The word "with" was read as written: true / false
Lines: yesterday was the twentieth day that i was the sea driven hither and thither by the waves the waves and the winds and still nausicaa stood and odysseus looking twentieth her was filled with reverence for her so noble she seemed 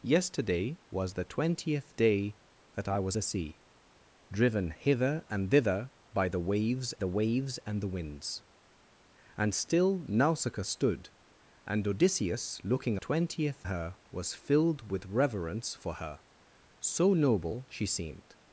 true